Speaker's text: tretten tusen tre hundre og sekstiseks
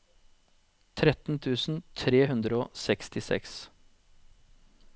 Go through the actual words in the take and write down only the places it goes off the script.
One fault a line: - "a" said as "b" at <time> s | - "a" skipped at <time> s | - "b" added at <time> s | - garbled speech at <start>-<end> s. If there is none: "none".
none